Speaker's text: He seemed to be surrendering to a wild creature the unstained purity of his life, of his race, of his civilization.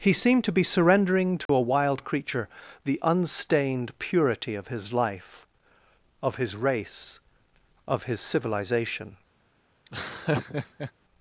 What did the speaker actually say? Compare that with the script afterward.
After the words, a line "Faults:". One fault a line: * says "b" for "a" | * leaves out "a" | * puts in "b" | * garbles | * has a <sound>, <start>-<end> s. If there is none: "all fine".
He seemed to be surrendering to a wild creature the unstained purity of his life, of his race, of his civilization.
Faults:
* has a dropout, 1.5-1.5 s
* has a laugh, 9.8-10.9 s